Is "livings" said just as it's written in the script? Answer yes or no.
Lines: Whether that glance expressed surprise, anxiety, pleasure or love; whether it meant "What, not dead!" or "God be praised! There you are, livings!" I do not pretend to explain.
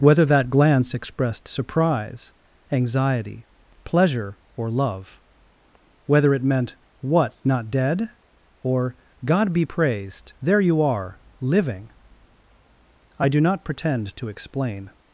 no